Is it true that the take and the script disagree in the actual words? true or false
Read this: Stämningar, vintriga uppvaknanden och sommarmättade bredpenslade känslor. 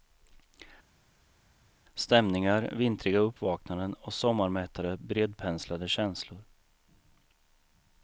false